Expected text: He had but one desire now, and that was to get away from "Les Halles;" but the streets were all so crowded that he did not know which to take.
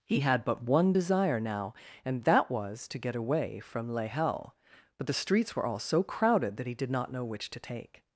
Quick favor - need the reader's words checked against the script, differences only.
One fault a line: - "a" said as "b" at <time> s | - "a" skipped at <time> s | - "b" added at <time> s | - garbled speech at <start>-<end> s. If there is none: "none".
none